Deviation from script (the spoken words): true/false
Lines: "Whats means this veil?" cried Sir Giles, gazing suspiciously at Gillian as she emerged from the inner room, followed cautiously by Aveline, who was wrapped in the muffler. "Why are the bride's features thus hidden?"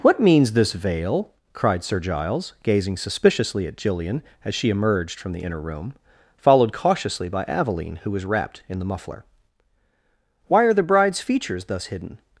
true